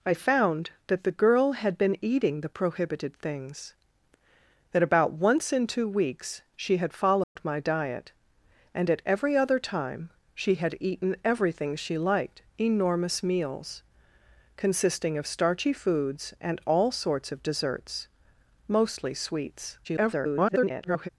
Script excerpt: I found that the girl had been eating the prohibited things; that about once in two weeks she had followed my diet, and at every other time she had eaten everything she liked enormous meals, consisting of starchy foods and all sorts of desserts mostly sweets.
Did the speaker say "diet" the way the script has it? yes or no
yes